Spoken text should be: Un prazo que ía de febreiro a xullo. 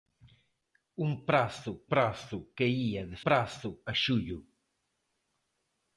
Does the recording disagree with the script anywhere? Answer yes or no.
yes